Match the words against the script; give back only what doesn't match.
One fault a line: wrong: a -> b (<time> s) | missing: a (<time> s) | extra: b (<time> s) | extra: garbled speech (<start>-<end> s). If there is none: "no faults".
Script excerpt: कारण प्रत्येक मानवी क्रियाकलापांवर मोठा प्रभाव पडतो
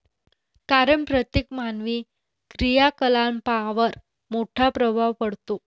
no faults